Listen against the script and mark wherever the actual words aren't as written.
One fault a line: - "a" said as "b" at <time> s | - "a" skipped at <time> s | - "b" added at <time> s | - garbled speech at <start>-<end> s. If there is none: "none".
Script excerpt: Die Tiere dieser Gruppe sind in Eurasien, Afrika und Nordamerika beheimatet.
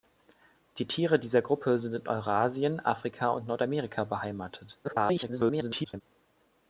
- garbled speech at 4.8-6.0 s